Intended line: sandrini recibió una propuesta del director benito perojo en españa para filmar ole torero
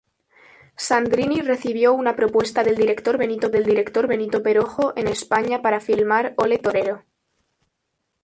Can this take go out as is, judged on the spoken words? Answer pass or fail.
fail